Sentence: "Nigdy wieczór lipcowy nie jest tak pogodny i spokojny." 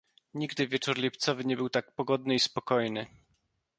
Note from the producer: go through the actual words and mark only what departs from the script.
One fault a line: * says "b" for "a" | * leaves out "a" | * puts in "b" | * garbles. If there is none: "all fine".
* says "był" for "jest"